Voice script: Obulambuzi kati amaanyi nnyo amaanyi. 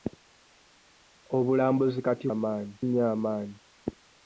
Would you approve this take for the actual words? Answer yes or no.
yes